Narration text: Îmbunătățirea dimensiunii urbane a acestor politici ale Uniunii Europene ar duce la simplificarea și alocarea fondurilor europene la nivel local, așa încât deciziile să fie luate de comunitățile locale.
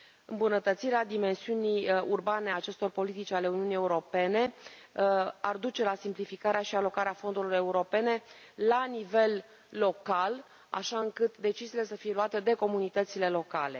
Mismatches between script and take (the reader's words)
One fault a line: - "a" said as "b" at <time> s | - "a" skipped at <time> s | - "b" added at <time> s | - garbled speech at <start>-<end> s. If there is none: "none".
none